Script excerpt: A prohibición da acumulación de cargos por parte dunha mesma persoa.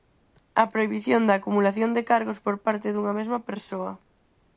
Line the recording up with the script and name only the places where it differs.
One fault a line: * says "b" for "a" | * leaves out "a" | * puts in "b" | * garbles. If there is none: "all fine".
all fine